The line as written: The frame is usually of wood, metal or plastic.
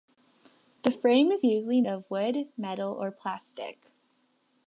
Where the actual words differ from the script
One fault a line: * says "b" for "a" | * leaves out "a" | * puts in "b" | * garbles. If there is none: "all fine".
all fine